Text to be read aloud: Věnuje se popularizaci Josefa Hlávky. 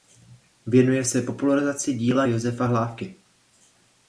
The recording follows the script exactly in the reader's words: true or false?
false